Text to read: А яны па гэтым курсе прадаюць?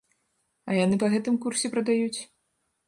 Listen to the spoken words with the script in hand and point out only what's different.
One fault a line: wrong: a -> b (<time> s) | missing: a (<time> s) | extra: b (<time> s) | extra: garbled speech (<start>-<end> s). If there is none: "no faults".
no faults